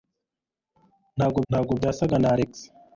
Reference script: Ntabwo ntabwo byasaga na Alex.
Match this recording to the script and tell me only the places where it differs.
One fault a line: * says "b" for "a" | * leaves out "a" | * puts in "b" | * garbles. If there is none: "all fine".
all fine